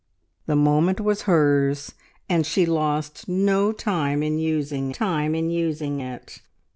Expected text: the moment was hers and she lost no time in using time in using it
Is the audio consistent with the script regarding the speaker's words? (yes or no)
yes